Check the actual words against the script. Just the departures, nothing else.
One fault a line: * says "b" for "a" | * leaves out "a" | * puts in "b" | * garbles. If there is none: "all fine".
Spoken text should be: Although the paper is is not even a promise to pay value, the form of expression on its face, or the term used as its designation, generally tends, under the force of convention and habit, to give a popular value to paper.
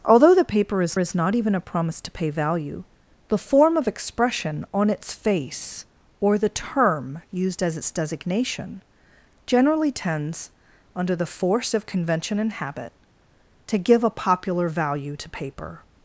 all fine